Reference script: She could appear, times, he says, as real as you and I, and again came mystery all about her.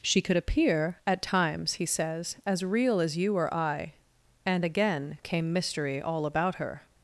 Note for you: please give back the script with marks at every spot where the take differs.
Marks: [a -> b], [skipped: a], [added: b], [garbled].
She could appear, [added: at] times, he says, as real as you [and -> or] I, and again came mystery all about her.